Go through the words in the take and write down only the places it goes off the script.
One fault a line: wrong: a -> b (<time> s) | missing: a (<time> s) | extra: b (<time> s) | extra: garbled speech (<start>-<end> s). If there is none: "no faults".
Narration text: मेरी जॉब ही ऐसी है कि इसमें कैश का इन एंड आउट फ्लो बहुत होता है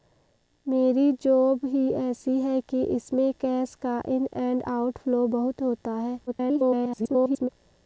extra: garbled speech (6.3-7.5 s)